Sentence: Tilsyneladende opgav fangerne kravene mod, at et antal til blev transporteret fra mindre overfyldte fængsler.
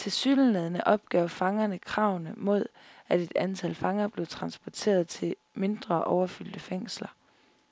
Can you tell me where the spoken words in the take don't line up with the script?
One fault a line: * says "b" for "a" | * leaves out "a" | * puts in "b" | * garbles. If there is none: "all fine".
* says "fanger" for "til"
* says "til" for "fra"